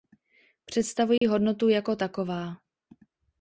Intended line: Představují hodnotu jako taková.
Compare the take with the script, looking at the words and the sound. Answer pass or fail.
fail